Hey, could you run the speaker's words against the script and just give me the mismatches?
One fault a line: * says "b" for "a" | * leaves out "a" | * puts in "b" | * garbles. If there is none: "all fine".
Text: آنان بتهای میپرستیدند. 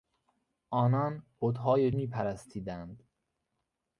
all fine